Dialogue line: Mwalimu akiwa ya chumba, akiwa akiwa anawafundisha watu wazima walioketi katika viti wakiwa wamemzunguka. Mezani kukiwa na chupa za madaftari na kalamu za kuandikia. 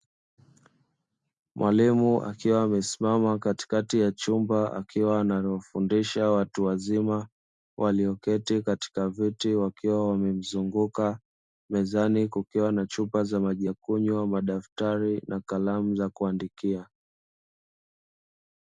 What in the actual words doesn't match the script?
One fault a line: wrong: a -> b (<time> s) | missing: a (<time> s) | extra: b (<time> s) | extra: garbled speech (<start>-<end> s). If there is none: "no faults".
extra: amesimama katikati (2.6 s)
missing: akiwa (5.2 s)
extra: maji ya kunywa (13.4 s)